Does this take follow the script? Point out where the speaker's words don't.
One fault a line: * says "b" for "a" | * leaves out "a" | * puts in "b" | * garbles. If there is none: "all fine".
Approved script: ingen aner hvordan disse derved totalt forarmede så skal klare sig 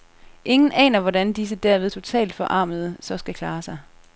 all fine